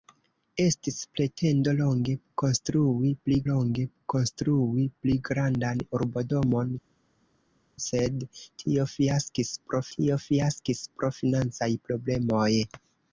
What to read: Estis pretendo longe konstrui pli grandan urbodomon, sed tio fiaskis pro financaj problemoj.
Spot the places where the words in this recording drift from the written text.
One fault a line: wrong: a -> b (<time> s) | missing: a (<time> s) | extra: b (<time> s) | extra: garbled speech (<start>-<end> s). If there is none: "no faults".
extra: longe konstrui pli (3.5 s)
extra: tio fiaskis pro (10.0 s)